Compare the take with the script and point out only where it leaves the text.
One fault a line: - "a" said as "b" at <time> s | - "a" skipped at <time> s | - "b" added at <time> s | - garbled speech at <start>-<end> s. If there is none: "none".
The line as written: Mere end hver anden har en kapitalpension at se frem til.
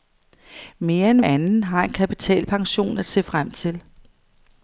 - "hver" skipped at 1.2 s